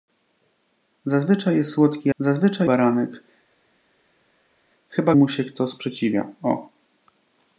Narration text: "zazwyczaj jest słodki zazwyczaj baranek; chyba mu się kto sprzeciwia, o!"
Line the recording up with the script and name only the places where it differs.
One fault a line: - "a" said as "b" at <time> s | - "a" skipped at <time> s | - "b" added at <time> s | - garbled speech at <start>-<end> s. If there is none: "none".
none